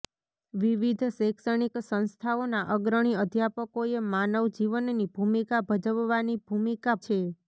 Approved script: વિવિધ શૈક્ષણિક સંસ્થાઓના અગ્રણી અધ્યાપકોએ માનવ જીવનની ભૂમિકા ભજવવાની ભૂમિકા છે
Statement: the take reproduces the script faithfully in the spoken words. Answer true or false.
true